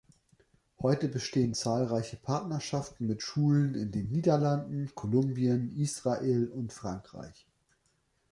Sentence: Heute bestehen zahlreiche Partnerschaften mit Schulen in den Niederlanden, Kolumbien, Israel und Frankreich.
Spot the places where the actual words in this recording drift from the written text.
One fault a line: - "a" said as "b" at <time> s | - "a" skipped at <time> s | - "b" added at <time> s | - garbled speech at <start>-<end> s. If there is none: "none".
none